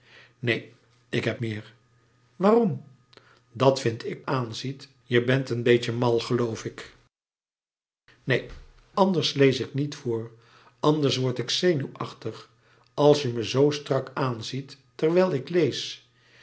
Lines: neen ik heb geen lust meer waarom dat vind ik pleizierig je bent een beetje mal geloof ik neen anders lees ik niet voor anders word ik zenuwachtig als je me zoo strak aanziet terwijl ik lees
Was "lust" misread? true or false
true